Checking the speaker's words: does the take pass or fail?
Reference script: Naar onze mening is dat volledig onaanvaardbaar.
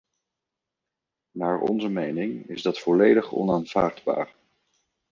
pass